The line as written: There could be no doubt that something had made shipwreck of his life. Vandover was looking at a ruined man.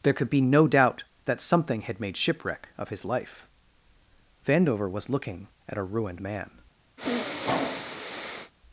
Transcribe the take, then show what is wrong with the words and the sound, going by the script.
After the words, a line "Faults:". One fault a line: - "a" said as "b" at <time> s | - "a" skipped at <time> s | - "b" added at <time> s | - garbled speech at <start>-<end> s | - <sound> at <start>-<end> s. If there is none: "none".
There could be no doubt that something had made shipwreck of his life. Vandover was looking at a ruined man.
Faults:
- sniff at 7.0-8.5 s